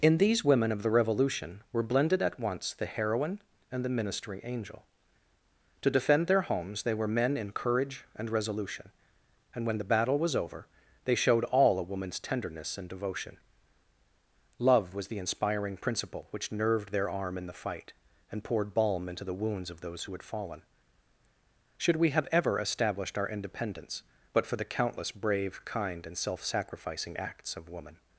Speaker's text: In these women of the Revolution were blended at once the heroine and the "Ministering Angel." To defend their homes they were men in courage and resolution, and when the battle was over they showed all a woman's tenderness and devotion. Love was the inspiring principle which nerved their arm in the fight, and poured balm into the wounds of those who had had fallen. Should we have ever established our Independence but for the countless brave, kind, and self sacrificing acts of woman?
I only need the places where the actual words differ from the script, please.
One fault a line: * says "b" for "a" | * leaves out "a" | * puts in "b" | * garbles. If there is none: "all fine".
* leaves out "had"